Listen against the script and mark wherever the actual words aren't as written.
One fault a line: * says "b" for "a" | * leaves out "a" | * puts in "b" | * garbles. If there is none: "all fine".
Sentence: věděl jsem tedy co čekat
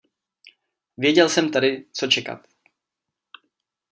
all fine